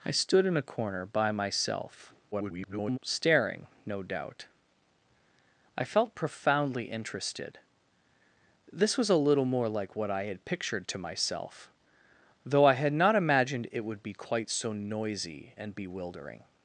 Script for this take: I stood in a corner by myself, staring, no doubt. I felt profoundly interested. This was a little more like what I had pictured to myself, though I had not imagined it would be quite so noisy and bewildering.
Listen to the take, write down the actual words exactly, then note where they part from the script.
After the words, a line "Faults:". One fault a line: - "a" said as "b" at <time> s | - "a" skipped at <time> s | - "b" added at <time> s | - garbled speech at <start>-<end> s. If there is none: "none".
I stood in a corner by myself, [garbled] staring, no doubt. I felt profoundly interested. This was a little more like what I had pictured to myself, though I had not imagined it would be quite so noisy and bewildering.
Faults:
- garbled speech at 2.3-3.0 s